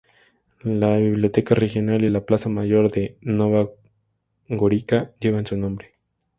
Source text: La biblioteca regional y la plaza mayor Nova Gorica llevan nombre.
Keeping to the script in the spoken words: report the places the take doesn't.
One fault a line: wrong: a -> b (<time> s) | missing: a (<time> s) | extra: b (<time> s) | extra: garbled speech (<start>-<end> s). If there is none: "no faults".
extra: de (2.9 s)
extra: su (5.5 s)